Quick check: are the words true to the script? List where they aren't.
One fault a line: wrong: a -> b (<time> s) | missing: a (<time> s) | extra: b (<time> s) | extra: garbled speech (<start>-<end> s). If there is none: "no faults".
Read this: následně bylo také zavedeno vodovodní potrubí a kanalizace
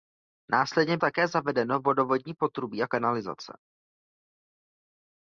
missing: bylo (1.0 s)